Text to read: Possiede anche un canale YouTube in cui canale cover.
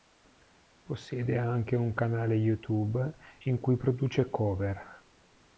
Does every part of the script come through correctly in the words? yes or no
no